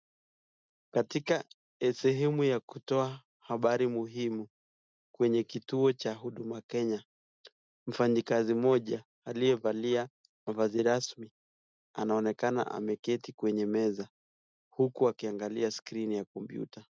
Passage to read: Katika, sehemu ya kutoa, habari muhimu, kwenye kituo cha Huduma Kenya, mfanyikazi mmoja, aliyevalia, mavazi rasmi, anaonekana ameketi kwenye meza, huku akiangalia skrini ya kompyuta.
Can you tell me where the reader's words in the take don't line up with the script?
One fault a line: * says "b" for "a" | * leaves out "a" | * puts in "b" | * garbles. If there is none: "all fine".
all fine